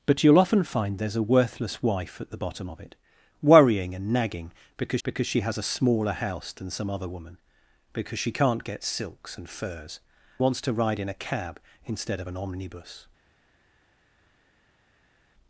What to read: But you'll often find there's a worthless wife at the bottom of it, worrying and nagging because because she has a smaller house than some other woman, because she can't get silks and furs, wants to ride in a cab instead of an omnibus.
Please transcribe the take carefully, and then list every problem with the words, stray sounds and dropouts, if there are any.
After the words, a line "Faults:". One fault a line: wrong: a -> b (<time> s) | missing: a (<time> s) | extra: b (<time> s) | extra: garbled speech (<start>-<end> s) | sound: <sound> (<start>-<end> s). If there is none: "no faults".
But you'll often find there's a worthless wife at the bottom of it, worrying and nagging because because she has a smaller house than some other woman, because she can't get silks and furs, wants to ride in a cab instead of an omnibus.
Faults:
no faults